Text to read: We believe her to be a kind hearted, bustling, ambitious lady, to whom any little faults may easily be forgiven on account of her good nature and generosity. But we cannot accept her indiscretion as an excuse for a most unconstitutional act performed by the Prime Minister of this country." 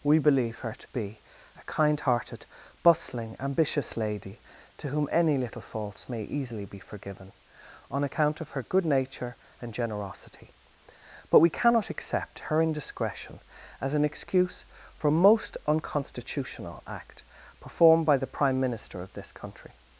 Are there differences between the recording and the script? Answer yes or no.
no